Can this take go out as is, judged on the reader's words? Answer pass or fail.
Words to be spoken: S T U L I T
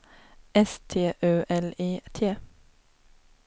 pass